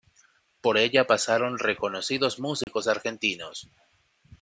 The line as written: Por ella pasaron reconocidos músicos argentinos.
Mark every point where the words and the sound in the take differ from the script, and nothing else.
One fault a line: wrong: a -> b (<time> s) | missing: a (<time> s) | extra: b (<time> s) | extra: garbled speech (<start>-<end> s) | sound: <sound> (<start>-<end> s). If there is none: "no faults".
sound: dropout (2.6-2.7 s)